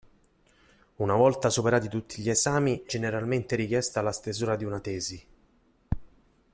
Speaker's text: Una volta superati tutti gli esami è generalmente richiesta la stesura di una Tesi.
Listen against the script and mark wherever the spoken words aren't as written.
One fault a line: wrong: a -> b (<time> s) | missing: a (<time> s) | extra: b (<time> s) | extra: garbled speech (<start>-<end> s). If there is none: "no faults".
missing: è (2.8 s)